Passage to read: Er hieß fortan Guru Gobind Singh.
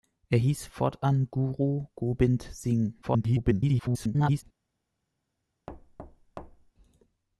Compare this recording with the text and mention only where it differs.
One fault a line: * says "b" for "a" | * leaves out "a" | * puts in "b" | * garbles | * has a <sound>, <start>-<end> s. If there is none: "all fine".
* garbles
* has a thud, 5.7-6.7 s